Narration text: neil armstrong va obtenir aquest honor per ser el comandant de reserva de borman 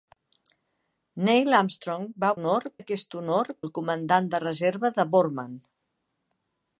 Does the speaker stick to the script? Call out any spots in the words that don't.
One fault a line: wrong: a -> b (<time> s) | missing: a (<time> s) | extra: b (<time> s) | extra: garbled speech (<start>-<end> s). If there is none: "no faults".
wrong: obtenir -> honor (2.4 s)
missing: per ser (3.5 s)